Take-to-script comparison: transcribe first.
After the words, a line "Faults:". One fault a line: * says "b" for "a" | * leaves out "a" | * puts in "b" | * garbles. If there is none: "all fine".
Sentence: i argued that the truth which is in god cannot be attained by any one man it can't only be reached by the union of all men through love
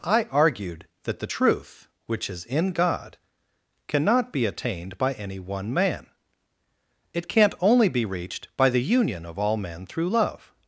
i argued that the truth which is in god cannot be attained by any one man it can't only be reached by the union of all men through love
Faults:
all fine